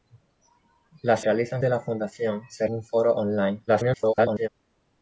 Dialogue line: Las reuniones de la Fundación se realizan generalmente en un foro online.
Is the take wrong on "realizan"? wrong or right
wrong